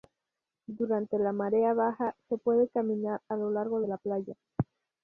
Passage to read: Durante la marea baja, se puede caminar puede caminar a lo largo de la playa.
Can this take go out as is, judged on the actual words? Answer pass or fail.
fail